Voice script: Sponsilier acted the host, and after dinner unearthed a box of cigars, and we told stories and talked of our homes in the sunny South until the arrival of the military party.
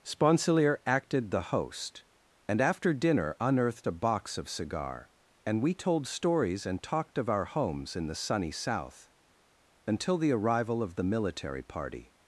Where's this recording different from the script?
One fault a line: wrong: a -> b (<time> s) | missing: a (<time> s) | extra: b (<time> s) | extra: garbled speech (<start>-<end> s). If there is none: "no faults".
wrong: cigars -> cigar (4.5 s)